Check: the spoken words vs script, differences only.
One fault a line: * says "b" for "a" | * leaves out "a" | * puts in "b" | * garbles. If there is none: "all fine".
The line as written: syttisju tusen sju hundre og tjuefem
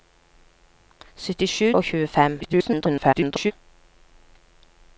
* leaves out "tusen sju hundre"
* garbles